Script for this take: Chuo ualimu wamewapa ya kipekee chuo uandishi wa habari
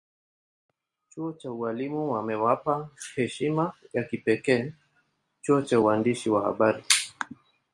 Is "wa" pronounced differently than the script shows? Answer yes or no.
no